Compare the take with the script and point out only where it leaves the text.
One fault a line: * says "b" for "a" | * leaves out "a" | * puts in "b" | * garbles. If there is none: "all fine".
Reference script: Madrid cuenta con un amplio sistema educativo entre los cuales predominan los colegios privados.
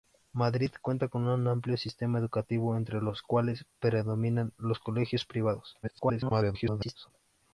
* garbles